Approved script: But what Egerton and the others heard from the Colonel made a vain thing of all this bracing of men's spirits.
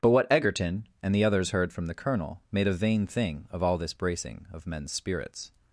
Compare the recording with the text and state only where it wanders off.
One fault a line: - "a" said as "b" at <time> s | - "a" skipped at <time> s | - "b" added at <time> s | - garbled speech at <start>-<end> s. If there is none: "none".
none